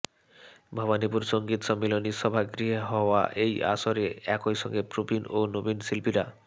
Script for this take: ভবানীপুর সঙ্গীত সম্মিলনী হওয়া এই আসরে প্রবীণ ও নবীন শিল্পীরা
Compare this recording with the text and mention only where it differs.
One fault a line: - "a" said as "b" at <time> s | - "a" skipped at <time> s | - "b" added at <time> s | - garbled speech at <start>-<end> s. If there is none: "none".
- "সভাগৃহে" added at 2.2 s
- "একই সঙ্গে" added at 4.3 s